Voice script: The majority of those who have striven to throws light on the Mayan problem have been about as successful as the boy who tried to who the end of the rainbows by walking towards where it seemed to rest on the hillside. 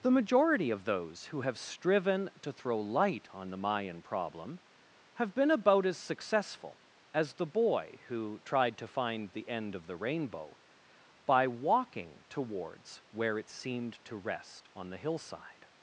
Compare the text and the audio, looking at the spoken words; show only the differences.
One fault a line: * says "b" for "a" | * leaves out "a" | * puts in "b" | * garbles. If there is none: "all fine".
* says "throw" for "throws"
* says "find" for "who"
* says "rainbow" for "rainbows"